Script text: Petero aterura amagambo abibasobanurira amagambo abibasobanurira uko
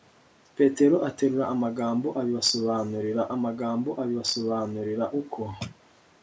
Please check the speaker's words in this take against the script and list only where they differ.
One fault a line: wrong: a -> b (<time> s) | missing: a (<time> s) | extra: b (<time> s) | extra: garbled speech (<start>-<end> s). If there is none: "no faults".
no faults